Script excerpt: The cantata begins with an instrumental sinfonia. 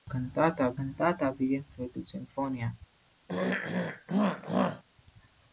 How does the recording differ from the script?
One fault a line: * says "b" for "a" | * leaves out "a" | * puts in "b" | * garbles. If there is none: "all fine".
* puts in "cantata"
* leaves out "an instrumental"